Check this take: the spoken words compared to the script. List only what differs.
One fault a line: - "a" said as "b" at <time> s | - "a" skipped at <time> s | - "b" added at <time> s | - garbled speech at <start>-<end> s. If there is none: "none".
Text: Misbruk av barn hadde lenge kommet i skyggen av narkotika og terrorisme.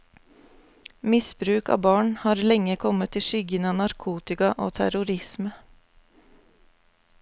- "hadde" said as "har" at 2.2 s